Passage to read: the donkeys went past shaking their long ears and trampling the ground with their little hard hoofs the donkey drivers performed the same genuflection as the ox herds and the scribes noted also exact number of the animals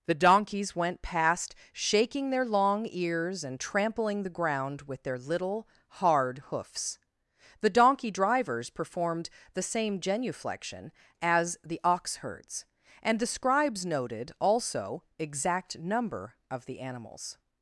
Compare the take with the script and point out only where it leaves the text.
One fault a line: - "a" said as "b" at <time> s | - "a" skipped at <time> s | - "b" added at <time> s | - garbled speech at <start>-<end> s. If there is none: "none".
none